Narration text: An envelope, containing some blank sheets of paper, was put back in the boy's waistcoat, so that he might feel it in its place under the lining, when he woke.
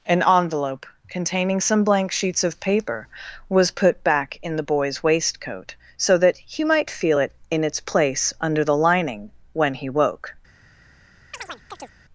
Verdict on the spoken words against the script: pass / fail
pass